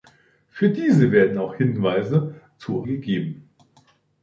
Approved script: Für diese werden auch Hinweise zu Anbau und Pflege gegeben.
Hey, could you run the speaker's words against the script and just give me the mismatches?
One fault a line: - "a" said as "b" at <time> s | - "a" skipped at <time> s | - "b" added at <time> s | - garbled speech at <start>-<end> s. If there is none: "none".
- "Anbau und Pflege" skipped at 2.9 s